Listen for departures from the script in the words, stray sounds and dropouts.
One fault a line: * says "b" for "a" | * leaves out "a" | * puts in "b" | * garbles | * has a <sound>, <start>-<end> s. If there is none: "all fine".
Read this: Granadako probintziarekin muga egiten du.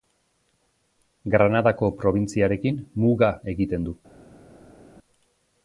all fine